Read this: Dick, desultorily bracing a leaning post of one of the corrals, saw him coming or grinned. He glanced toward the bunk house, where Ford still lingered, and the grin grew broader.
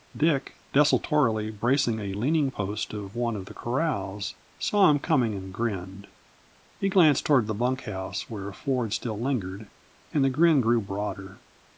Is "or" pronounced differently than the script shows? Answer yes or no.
yes